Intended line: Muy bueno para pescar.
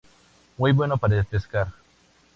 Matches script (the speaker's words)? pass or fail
pass